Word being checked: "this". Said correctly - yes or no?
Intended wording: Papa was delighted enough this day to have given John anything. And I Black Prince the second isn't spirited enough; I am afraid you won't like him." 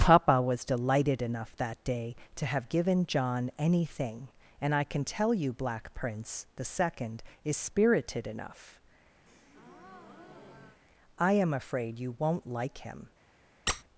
no